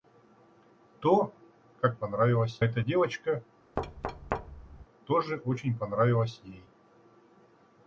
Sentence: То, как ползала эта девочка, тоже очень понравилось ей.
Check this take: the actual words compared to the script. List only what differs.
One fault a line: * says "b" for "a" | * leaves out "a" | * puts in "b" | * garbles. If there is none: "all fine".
* says "понравилось" for "ползала"